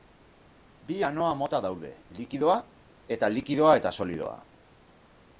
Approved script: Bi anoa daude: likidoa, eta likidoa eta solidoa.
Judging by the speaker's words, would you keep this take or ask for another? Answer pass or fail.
fail